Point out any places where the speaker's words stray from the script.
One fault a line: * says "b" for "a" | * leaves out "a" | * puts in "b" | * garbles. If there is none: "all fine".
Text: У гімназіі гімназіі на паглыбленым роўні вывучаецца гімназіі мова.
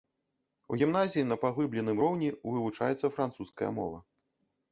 * leaves out "гімназіі"
* says "французская" for "гімназіі"